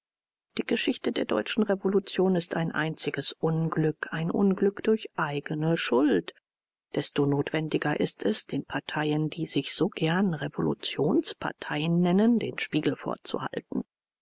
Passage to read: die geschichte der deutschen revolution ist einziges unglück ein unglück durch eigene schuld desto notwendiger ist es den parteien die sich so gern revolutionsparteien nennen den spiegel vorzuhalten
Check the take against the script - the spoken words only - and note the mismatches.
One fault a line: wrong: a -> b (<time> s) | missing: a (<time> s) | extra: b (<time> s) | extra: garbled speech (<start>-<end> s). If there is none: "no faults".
extra: ein (2.5 s)